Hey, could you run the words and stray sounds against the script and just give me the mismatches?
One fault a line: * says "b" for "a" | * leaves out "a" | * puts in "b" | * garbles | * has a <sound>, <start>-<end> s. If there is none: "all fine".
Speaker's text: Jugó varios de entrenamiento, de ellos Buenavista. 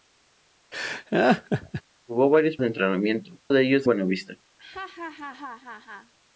* has a laugh, 0.7-1.8 s
* has a laugh, 4.6-6.1 s